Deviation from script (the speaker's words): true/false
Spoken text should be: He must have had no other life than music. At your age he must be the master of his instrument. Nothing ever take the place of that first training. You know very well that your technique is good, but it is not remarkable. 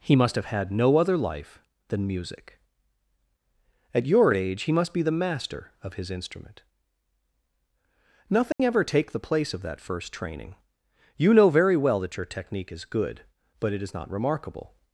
false